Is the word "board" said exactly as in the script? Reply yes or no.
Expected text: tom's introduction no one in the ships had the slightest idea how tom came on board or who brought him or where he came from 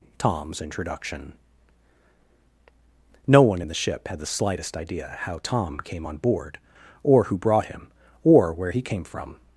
yes